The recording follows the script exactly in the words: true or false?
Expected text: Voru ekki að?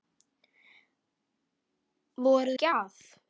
true